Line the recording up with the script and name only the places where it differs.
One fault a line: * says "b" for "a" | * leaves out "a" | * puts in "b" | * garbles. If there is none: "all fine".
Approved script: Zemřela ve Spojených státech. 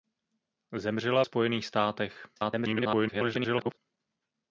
* leaves out "ve"
* garbles